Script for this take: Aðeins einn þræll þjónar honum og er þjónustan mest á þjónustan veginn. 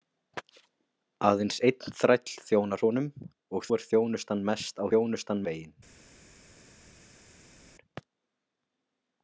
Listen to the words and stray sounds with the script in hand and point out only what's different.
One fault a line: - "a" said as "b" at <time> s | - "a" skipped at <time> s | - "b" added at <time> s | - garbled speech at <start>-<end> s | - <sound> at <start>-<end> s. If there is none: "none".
none